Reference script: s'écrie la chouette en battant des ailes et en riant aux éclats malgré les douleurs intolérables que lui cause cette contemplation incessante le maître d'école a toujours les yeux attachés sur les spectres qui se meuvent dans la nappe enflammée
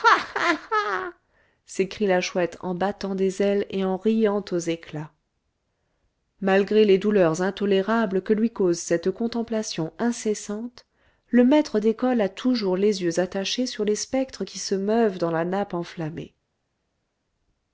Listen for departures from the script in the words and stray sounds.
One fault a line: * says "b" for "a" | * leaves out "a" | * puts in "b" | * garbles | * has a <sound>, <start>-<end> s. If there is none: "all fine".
all fine